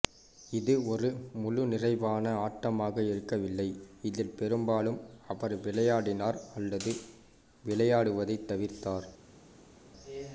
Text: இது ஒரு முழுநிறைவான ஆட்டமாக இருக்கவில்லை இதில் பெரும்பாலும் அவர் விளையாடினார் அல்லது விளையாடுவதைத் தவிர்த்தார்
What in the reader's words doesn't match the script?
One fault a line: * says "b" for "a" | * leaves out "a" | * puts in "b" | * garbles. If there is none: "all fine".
all fine